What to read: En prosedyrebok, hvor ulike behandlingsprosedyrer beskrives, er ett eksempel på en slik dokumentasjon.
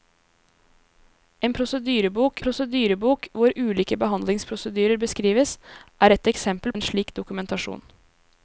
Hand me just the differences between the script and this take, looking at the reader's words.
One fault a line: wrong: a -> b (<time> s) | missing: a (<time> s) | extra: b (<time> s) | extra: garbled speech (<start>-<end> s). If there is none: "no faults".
extra: prosedyrebok (2.4 s)
missing: på (6.7 s)